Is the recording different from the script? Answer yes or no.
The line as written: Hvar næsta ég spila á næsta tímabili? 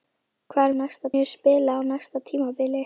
no